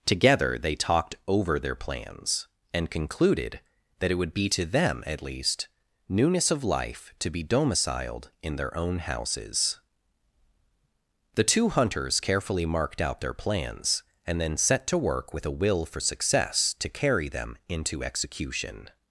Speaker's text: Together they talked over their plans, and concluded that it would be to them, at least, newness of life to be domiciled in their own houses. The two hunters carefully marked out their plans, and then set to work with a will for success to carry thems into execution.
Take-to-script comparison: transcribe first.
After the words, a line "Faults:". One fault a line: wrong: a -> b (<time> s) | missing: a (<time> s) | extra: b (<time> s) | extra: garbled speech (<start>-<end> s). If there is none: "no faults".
Together they talked over their plans, and concluded that it would be to them, at least, newness of life to be domiciled in their own houses. The two hunters carefully marked out their plans, and then set to work with a will for success to carry them into execution.
Faults:
wrong: thems -> them (17.3 s)